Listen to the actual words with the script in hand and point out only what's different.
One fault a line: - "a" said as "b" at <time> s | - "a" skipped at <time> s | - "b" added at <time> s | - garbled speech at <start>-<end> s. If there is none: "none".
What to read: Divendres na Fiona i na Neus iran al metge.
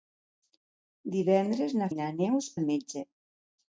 - "Fiona" skipped at 1.9 s
- "iran" skipped at 2.5 s